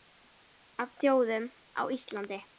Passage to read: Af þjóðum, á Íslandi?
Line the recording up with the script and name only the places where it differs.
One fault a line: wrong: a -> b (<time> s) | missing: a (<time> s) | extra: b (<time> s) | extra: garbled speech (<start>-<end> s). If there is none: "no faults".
no faults